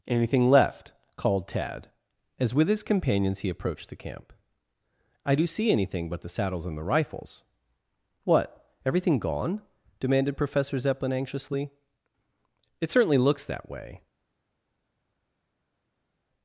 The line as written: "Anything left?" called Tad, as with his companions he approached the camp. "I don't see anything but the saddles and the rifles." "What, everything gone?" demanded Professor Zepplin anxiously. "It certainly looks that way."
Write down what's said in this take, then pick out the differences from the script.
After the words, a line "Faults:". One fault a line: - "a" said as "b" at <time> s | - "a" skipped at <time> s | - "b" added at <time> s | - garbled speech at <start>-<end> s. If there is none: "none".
"Anything left?" called Tad, as with his companions he approached the camp. "I do see anything but the saddles and the rifles." "What, everything gone?" demanded Professor Zepplin anxiously. "It certainly looks that way."
Faults:
- "don't" said as "do" at 5.3 s